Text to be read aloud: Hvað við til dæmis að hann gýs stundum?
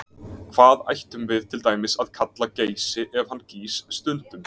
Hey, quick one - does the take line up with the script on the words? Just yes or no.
no